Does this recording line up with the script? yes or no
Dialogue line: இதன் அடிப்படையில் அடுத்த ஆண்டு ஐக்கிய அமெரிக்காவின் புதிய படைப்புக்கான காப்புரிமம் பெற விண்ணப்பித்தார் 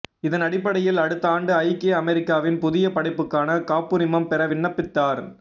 yes